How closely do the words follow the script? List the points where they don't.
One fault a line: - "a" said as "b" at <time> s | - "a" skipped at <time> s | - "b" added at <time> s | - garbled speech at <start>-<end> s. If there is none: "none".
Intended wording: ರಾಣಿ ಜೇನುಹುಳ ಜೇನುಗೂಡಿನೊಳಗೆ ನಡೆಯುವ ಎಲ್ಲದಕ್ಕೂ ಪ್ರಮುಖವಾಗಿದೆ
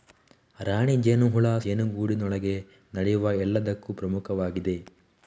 none